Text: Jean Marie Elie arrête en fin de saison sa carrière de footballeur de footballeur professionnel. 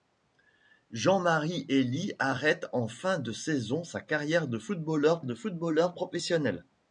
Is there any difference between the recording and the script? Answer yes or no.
no